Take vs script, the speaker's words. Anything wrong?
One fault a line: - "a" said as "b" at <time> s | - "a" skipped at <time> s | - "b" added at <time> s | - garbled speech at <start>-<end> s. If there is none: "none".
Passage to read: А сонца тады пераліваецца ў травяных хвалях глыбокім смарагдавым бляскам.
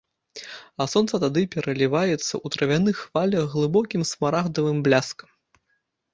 none